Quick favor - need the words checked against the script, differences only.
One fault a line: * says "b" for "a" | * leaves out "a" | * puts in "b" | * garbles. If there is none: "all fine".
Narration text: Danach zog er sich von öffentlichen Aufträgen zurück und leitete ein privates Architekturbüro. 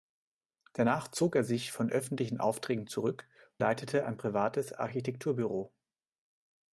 * leaves out "und"